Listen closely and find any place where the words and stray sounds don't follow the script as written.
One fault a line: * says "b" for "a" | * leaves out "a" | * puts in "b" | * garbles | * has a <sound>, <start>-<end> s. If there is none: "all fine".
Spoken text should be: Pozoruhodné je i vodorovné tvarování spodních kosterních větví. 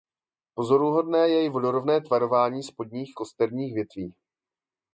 all fine